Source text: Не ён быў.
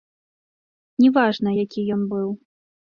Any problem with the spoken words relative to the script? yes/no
yes